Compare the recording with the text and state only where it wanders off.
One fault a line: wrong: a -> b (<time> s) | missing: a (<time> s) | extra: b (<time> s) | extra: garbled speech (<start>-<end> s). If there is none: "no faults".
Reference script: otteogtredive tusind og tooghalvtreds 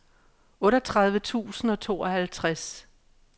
no faults